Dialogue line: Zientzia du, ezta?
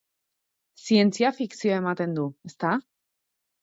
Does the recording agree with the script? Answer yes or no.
no